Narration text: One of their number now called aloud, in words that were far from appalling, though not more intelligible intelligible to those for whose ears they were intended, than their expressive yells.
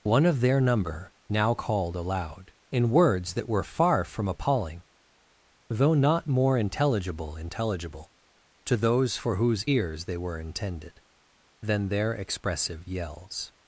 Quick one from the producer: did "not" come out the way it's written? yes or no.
yes